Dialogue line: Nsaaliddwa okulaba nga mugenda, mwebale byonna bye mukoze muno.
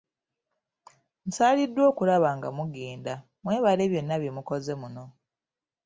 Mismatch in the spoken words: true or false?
false